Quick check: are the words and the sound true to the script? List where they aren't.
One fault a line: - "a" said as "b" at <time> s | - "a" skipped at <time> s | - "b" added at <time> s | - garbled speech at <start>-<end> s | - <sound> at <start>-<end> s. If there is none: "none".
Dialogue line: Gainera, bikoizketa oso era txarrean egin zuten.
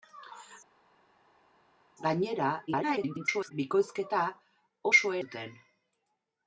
- garbled speech at 2.7-3.5 s
- "era txarrean egin" skipped at 5.1 s